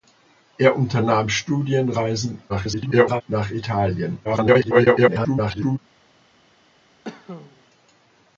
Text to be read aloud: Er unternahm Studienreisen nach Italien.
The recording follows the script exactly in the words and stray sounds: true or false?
false